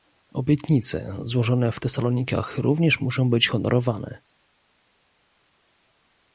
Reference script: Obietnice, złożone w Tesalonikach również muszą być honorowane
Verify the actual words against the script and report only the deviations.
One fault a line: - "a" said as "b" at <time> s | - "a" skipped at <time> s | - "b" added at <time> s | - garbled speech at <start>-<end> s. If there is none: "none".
none